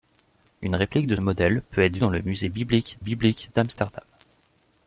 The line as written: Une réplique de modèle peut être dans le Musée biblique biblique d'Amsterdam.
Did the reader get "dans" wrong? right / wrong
right